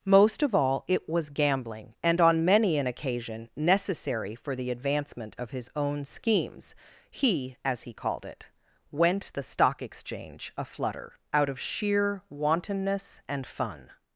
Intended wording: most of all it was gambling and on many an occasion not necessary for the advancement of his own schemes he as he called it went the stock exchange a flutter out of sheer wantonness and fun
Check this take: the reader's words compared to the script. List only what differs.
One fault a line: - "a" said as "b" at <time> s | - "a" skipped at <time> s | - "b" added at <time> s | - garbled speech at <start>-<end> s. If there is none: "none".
- "not" skipped at 3.5 s